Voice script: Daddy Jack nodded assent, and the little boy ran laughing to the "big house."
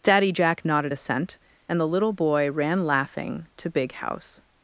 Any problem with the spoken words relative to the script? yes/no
yes